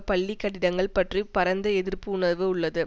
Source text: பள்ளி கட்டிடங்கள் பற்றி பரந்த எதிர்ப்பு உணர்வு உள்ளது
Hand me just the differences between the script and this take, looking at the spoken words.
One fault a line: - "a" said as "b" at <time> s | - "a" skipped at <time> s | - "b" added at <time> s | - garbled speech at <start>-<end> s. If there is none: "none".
none